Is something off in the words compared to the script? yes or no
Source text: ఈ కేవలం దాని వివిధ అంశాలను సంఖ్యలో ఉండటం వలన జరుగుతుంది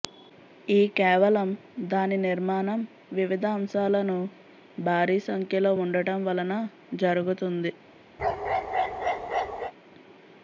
yes